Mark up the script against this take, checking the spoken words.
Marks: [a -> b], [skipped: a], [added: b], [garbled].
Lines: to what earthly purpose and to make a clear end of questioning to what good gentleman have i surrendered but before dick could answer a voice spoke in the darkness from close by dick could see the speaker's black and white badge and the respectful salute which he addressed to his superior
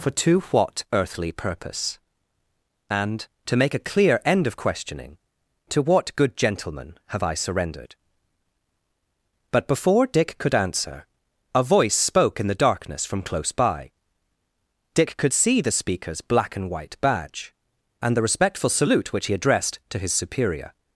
[added: for] to what earthly purpose and to make a clear end of questioning to what good gentleman have i surrendered but before dick could answer a voice spoke in the darkness from close by dick could see the speaker's black and white badge and the respectful salute which he addressed to his superior